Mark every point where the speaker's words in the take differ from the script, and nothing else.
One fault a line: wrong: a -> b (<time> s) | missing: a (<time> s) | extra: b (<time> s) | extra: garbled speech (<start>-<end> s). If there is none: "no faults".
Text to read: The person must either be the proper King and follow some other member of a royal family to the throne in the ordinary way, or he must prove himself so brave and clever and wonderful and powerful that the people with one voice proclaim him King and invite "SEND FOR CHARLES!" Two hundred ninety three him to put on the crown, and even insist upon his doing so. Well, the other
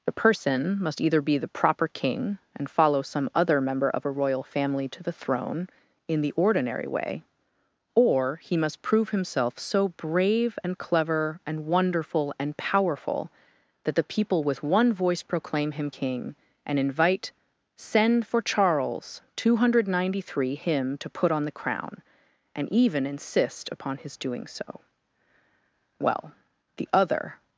no faults